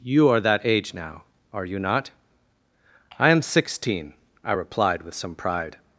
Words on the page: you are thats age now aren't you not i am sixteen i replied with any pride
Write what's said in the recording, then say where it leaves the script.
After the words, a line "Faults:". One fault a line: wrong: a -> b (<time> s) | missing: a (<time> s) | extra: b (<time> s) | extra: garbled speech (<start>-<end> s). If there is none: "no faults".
you are that age now are you not i am sixteen i replied with some pride
Faults:
wrong: thats -> that (0.4 s)
wrong: aren't -> are (1.5 s)
wrong: any -> some (5.1 s)